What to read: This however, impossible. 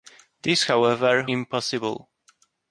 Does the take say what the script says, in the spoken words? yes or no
yes